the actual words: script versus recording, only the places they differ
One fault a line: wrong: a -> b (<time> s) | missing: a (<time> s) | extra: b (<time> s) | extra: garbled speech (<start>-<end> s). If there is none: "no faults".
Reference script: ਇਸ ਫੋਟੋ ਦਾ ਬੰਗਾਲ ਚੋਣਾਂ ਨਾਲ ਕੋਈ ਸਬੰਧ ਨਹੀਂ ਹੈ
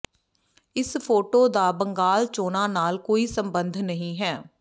no faults